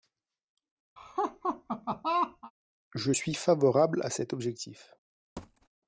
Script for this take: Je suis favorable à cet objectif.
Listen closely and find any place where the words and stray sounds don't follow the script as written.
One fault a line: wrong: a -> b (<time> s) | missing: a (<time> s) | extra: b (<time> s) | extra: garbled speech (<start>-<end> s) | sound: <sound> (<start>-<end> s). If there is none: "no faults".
sound: laugh (1.0-2.5 s)
sound: thud (5.4-5.7 s)